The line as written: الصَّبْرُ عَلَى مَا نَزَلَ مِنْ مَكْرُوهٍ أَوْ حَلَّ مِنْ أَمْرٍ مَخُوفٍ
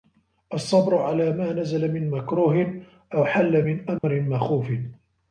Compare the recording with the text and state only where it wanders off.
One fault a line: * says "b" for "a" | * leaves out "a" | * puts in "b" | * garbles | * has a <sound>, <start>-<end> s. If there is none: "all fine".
* has a dropout, 4.0-4.0 s